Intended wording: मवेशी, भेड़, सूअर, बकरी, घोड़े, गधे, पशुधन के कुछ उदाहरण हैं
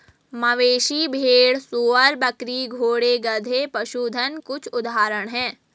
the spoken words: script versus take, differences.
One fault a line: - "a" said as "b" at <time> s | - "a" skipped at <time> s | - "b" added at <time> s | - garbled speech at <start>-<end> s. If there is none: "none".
- "के" skipped at 4.4 s